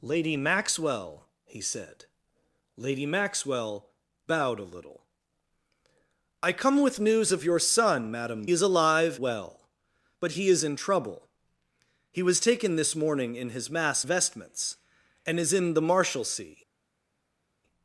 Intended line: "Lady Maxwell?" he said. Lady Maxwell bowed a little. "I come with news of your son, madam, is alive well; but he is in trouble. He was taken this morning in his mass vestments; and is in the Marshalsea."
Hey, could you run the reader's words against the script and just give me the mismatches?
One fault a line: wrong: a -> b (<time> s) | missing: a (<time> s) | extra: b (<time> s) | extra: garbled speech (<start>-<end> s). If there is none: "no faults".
no faults